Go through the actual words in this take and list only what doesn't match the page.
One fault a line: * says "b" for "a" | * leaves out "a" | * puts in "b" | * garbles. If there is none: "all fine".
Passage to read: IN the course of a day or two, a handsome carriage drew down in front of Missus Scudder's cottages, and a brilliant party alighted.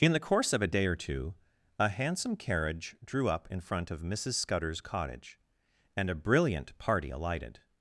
* says "up" for "down"
* says "cottage" for "cottages"